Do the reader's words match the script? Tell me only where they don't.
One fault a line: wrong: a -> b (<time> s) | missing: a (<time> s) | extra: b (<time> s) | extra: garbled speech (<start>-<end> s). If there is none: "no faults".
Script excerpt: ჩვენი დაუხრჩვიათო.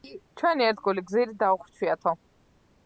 extra: ერთგული გზირი (0.7 s)